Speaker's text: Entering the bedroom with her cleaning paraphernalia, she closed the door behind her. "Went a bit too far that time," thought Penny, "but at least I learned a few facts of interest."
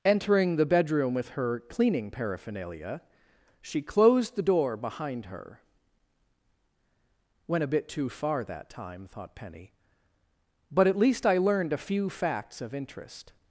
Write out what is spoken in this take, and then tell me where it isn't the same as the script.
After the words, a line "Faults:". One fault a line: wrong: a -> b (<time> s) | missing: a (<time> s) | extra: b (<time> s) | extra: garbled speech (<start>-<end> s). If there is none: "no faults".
Entering the bedroom with her cleaning paraphernalia, she closed the door behind her. "Went a bit too far that time," thought Penny, "but at least I learned a few facts of interest."
Faults:
no faults